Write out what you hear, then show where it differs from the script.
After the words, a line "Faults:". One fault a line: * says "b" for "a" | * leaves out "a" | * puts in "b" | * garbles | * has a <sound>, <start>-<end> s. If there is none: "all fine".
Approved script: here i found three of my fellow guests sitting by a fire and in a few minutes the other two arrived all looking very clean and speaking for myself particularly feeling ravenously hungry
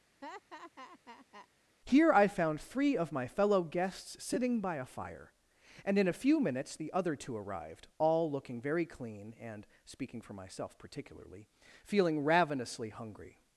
here i found three of my fellow guests sitting by a fire and in a few minutes the other two arrived all looking very clean and speaking for myself particularly feeling ravenously hungry
Faults:
* has a laugh, 0.2-1.5 s